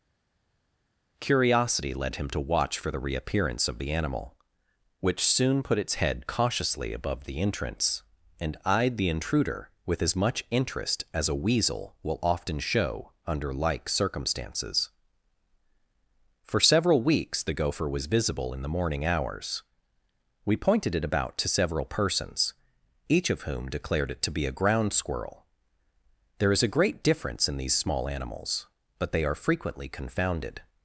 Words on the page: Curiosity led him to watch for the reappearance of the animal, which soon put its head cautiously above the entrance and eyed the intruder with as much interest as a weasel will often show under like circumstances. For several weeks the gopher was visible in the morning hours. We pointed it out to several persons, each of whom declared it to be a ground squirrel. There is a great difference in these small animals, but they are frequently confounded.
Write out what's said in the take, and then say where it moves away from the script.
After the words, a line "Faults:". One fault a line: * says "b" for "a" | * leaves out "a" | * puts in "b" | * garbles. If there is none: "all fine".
Curiosity led him to watch for the reappearance of the animal, which soon put its head cautiously above the entrance and eyed the intruder with as much interest as a weasel will often show under like circumstances. For several weeks the gopher was visible in the morning hours. We pointed it about to several persons, each of whom declared it to be a ground squirrel. There is a great difference in these small animals, but they are frequently confounded.
Faults:
* says "about" for "out"